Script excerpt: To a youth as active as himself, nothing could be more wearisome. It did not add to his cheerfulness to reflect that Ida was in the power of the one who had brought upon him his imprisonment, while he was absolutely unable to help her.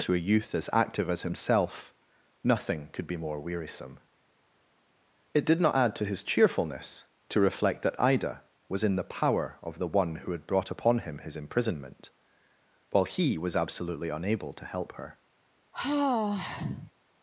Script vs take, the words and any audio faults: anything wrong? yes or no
yes